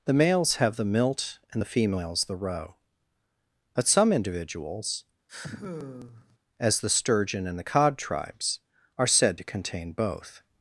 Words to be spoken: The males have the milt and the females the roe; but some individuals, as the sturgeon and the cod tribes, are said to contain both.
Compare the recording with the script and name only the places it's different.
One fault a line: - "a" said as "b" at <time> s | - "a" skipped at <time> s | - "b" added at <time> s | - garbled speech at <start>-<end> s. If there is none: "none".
none